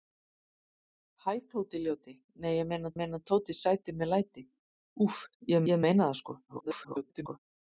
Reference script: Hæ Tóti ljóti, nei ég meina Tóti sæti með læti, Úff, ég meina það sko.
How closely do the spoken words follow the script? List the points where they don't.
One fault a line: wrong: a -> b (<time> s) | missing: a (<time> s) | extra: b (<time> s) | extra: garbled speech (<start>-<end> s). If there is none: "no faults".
extra: meina (3.0 s)
extra: ég (5.7 s)
extra: garbled speech (6.5-7.4 s)